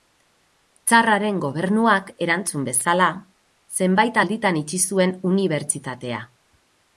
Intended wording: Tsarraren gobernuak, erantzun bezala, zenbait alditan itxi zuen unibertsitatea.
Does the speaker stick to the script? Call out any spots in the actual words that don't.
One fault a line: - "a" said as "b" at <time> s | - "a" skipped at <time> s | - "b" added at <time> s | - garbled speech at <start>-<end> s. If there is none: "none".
none